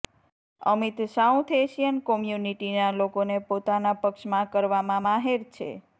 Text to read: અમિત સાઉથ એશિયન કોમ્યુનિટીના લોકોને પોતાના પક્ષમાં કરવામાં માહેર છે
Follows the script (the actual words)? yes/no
yes